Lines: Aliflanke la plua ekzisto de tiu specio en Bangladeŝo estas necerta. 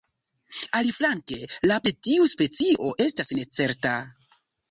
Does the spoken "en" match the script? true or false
false